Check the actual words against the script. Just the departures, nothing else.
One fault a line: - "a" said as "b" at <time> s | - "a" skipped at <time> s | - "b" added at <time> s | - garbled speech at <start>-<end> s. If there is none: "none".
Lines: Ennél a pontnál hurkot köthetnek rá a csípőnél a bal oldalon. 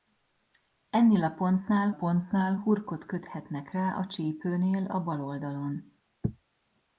- "pontnál" added at 1.9 s